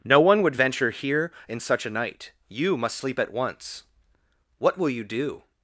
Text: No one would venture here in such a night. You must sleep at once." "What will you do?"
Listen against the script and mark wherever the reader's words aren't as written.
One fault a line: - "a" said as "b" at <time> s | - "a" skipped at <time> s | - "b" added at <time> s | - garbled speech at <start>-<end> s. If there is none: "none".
none